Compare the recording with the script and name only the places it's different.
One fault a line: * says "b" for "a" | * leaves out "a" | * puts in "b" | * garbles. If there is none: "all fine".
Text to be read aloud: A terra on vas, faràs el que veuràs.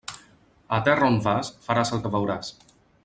all fine